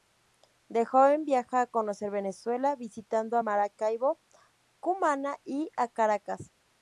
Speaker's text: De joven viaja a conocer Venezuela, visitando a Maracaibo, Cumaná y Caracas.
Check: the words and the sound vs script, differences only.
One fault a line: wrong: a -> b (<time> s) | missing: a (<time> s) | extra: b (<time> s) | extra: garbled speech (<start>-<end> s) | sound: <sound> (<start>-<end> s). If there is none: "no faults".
extra: a (5.7 s)